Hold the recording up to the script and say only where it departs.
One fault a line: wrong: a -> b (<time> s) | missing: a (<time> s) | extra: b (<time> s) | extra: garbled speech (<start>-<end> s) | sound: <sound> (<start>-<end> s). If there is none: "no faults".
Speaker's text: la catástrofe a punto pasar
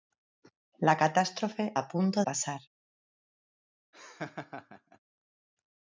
sound: laugh (3.9-5.0 s)